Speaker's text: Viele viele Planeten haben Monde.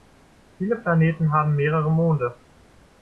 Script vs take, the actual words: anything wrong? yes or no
yes